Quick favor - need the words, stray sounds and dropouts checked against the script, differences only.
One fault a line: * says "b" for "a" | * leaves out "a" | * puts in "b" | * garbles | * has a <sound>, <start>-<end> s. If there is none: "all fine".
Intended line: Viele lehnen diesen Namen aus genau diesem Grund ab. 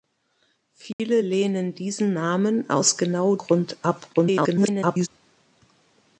* has a dropout, 0.9-1.0 s
* leaves out "diesem"
* garbles